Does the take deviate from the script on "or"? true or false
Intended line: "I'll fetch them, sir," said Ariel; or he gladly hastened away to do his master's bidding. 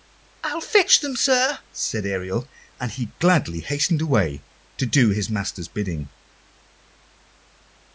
true